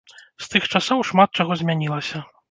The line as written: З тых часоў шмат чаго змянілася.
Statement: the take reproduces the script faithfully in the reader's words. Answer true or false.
true